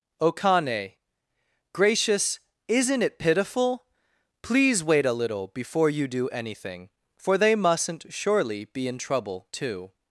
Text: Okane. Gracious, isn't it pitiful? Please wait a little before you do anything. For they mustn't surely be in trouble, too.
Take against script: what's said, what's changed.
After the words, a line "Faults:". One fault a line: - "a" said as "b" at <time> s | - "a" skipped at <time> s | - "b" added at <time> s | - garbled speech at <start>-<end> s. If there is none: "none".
Okane. Gracious, isn't it pitiful? Please wait a little before you do anything. For they mustn't surely be in trouble, too.
Faults:
none